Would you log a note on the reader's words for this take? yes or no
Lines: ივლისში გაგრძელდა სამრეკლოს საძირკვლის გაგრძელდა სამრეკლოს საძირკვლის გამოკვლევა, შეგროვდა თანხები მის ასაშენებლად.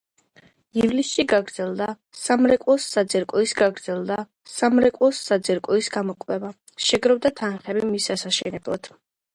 no